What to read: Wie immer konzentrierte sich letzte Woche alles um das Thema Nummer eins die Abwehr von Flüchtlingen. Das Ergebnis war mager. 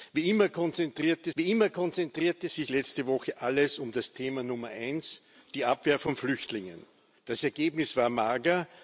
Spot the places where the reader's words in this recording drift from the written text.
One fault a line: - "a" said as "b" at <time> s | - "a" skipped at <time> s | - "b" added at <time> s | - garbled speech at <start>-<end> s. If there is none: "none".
- "wie immer konzentrierte" added at 1.4 s